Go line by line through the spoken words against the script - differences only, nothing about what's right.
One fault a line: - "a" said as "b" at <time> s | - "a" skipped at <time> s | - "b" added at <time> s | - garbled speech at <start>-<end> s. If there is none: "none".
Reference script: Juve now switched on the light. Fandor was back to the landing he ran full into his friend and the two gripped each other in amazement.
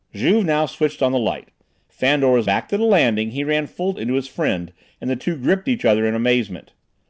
none